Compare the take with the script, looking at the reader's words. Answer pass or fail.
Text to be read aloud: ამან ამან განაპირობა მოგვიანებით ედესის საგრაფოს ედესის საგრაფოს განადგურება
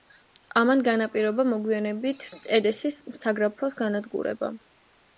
fail